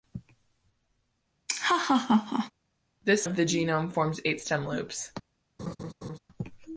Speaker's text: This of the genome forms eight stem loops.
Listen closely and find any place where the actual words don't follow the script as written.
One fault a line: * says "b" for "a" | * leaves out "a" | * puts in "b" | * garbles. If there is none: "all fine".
all fine